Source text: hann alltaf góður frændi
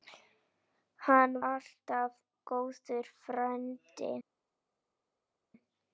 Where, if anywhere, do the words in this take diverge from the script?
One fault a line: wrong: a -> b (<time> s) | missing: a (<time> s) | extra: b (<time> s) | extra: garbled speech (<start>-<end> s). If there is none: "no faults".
no faults